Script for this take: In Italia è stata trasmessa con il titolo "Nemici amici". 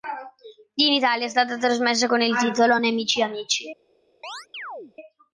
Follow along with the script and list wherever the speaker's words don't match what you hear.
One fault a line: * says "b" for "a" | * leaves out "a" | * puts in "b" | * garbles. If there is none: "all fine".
all fine